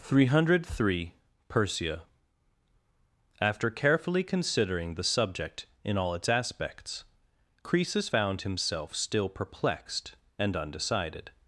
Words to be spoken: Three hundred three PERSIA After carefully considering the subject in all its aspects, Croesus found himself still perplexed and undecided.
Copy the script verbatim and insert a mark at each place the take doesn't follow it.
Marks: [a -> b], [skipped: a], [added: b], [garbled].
Three hundred three PERSIA After carefully considering the subject in all its aspects, Croesus found himself still perplexed and undecided.